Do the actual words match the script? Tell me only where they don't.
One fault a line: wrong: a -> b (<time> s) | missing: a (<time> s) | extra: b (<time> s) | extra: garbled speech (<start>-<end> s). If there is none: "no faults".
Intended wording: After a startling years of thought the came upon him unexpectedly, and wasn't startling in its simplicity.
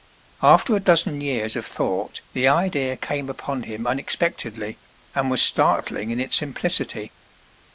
wrong: startling -> dozen (0.8 s)
extra: idea (2.5 s)
wrong: wasn't -> was (5.3 s)